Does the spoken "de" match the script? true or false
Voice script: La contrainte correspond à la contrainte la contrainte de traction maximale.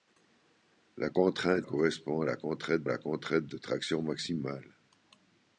true